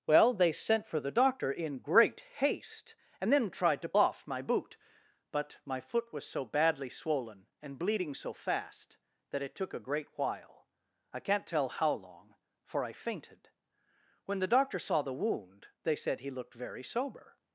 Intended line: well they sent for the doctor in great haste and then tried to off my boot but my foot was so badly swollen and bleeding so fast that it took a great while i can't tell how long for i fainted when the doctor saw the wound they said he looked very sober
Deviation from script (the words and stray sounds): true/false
false